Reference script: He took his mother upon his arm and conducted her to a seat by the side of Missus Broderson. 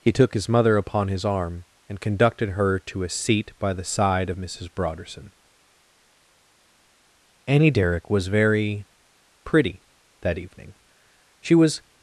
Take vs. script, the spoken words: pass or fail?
fail